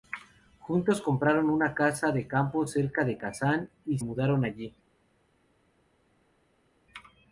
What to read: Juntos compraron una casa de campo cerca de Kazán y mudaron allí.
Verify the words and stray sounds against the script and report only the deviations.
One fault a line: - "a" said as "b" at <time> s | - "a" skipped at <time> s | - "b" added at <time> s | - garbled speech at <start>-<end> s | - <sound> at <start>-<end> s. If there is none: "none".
none